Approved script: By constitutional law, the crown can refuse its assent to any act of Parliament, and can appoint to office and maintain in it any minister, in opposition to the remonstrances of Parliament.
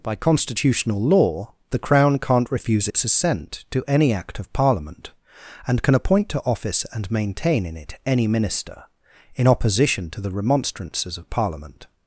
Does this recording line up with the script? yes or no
no